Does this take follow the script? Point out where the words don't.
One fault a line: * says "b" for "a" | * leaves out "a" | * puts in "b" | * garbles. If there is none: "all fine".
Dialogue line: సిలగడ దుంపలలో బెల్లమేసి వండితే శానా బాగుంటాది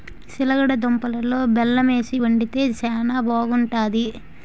all fine